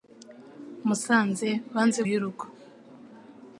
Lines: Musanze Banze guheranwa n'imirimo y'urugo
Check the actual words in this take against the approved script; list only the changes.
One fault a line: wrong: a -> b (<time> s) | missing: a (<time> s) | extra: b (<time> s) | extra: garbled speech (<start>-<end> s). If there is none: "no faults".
missing: guheranwa n'imirimo (2.0 s)